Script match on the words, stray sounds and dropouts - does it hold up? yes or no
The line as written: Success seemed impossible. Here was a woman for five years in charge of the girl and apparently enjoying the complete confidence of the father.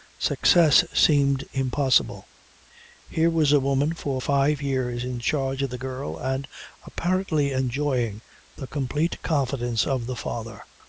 yes